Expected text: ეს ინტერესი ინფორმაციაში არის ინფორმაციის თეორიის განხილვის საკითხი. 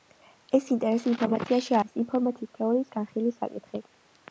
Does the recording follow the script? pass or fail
pass